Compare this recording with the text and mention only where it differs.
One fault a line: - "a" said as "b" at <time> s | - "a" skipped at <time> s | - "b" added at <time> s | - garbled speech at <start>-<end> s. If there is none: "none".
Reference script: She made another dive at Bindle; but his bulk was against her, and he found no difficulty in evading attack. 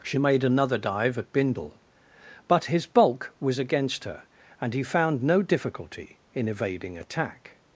none